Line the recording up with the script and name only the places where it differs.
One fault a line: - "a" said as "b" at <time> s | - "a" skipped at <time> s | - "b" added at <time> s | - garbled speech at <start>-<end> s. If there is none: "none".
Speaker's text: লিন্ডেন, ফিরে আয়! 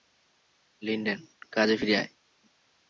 - "কাজে" added at 1.5 s